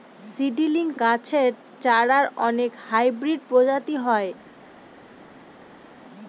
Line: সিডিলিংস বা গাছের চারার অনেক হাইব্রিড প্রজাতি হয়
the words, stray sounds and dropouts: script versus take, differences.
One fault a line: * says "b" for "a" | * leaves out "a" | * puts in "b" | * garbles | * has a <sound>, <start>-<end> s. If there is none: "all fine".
* leaves out "বা"